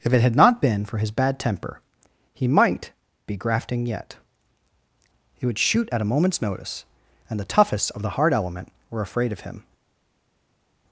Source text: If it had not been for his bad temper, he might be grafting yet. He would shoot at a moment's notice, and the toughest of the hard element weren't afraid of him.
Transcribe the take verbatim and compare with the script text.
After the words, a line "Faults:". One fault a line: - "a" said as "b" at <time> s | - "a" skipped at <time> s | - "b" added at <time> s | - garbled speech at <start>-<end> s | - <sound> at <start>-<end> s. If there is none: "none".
If it had not been for his bad temper, he might be grafting yet. He would shoot at a moment's notice, and the toughest of the hard element were afraid of him.
Faults:
- "weren't" said as "were" at 8.9 s